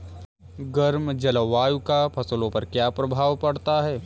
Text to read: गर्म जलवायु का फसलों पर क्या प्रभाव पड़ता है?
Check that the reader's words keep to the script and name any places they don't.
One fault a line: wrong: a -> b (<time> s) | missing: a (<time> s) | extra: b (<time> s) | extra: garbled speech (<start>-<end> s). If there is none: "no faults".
no faults